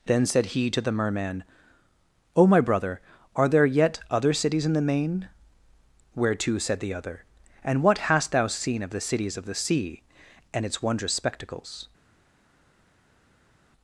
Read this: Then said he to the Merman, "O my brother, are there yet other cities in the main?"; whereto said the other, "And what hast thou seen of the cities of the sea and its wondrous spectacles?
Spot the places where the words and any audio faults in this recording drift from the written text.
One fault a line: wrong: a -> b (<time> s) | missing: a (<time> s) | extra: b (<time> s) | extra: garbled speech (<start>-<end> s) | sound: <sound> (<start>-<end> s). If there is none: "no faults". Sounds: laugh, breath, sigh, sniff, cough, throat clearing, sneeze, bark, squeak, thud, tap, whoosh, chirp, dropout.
no faults